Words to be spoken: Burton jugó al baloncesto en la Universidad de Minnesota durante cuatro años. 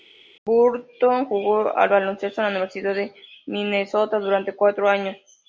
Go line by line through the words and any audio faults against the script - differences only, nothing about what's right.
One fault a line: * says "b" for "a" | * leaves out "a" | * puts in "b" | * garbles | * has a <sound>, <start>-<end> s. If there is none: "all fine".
all fine